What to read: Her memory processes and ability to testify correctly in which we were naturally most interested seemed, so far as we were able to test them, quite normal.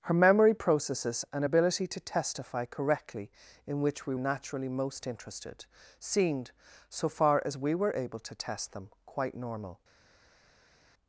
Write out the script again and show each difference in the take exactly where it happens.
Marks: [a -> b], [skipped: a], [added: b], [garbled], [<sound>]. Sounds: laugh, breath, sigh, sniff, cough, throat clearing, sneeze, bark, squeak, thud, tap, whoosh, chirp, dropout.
Her memory processes and ability to testify correctly in which we [skipped: were] naturally most interested seemed, so far as we were able to test them, quite normal.